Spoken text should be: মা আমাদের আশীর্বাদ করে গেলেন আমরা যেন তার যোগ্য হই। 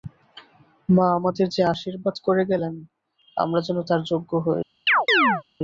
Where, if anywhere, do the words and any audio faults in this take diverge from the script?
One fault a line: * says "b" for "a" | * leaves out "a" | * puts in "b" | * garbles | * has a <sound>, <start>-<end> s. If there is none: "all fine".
* puts in "যে"
* has a chirp, 4.9-5.4 s